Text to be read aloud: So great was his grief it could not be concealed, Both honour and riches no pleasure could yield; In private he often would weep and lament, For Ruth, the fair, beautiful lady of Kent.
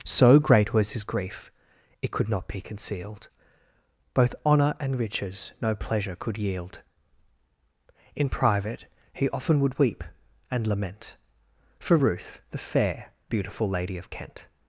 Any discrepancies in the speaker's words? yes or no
no